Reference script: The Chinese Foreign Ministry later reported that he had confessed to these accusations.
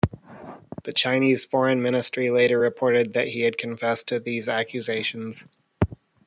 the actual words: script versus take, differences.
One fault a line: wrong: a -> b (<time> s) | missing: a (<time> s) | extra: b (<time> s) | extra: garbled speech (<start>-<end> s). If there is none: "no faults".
no faults